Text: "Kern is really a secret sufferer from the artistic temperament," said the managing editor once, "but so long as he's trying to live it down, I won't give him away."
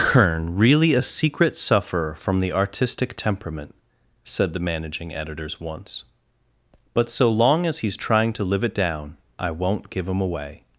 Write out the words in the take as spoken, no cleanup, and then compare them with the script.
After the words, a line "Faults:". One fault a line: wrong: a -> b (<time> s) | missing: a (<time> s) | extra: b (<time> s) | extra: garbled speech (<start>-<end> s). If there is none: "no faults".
"Kern really a secret sufferer from the artistic temperament," said the managing editors once, "but so long as he's trying to live it down, I won't give him away."
Faults:
missing: is (0.6 s)
wrong: editor -> editors (5.1 s)